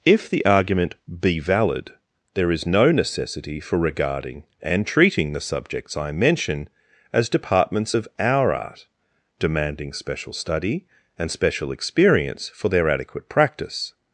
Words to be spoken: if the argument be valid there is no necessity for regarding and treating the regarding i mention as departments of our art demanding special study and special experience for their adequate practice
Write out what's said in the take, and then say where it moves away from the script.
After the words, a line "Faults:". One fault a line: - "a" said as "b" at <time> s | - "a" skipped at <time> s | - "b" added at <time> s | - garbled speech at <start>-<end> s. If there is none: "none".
if the argument be valid there is no necessity for regarding and treating the subjects i mention as departments of our art demanding special study and special experience for their adequate practice
Faults:
- "regarding" said as "subjects" at 5.4 s